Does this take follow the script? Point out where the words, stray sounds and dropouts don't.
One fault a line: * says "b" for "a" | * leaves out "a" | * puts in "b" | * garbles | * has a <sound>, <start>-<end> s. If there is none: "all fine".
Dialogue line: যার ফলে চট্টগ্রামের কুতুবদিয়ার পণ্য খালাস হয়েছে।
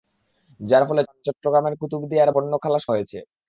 all fine